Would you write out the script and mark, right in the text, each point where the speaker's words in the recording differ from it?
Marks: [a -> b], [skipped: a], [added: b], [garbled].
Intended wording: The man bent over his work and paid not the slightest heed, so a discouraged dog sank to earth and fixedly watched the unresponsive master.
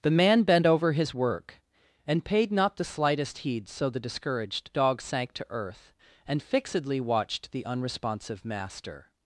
The man bent over his work and paid not the slightest heed, so [a -> the] discouraged dog sank to earth and fixedly watched the unresponsive master.